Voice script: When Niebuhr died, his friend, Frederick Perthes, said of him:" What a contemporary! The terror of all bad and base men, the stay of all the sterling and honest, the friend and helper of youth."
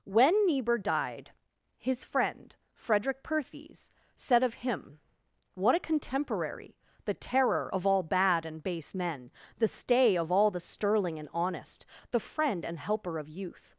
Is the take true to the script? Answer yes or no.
yes